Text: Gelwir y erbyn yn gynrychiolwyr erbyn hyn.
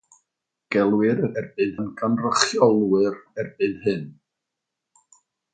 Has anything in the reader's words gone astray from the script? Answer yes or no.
no